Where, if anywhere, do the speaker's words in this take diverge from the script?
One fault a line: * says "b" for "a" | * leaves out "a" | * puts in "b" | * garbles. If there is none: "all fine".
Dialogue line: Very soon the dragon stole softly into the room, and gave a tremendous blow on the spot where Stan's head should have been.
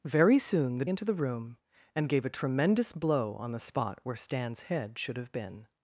* leaves out "dragon stole softly"